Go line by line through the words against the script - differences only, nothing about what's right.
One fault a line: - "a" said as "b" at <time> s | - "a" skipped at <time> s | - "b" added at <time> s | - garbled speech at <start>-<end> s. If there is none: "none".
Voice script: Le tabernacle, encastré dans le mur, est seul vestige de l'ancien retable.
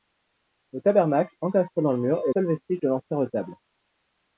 none